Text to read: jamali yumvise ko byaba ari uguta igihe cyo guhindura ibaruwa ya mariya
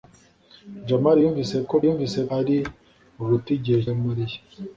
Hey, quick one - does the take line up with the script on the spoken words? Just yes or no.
no